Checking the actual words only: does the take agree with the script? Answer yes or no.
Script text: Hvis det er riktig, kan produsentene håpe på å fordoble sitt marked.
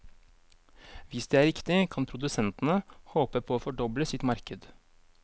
yes